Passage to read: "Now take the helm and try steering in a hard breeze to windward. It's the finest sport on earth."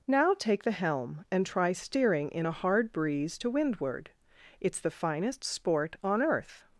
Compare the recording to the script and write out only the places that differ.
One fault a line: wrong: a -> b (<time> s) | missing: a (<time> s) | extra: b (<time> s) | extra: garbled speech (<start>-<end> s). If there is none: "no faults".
no faults